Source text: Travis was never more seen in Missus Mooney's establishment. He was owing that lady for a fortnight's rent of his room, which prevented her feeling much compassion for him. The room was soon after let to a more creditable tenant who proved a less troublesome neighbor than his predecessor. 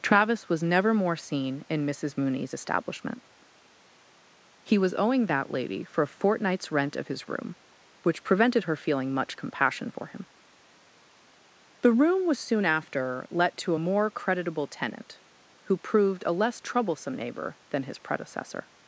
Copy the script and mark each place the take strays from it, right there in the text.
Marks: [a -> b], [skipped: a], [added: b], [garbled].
Travis was never more seen in Missus Mooney's establishment. He was owing that lady for a fortnight's rent of his room, which prevented her feeling much compassion for him. The room was soon after let to a more creditable tenant who proved a less troublesome neighbor than his predecessor.